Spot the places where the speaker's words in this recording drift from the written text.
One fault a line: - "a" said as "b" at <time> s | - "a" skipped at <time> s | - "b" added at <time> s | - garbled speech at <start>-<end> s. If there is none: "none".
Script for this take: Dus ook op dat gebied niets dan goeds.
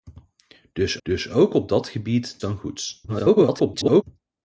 - "dus" added at 1.0 s
- "niets" skipped at 2.4 s
- garbled speech at 3.1-4.0 s